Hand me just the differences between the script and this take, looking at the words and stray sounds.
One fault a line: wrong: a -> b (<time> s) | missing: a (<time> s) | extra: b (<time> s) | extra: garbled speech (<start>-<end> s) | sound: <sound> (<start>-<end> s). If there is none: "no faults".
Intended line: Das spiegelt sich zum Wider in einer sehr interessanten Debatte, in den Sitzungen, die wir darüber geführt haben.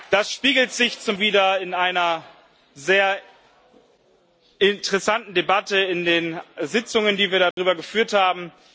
sound: dropout (7.5-7.6 s)